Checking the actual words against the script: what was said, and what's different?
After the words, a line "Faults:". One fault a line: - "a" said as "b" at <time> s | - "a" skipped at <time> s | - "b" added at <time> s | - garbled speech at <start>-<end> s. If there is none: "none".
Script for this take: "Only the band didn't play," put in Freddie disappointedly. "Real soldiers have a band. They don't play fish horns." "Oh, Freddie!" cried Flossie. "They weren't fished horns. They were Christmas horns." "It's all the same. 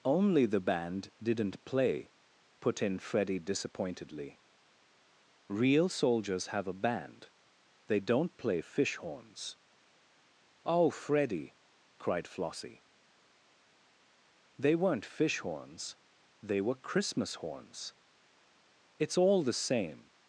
"Only the band didn't play," put in Freddie disappointedly. "Real soldiers have a band. They don't play fish horns." "Oh, Freddie!" cried Flossie. "They weren't fish horns. They were Christmas horns." "It's all the same.
Faults:
- "fished" said as "fish" at 15.0 s